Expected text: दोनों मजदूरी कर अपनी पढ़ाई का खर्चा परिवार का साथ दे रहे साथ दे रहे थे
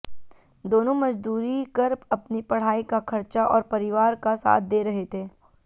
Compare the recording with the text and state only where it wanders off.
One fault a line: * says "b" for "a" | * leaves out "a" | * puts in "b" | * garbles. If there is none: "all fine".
* puts in "और"
* leaves out "साथ दे रहे"